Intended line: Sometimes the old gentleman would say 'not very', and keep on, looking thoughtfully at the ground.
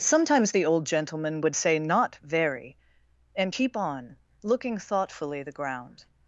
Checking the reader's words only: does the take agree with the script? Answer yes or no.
no